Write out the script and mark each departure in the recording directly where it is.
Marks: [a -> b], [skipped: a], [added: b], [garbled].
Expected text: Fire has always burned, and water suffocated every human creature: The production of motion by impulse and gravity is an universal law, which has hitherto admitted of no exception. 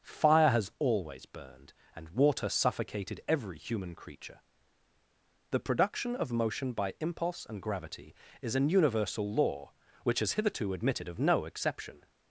Fire has always burned, and water suffocated every human creature: The production of motion by impulse and gravity is an universal law, which has hitherto admitted of no exception.